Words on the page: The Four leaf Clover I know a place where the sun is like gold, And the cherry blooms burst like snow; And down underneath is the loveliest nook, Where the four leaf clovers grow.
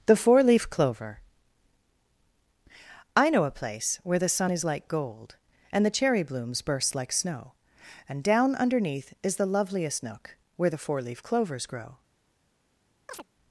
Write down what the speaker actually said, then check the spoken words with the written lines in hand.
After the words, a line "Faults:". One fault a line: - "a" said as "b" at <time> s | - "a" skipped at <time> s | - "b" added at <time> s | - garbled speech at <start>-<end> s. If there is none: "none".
The Four leaf Clover I know a place where the sun is like gold, And the cherry blooms burst like snow; And down underneath is the loveliest nook, Where the four leaf clovers grow.
Faults:
none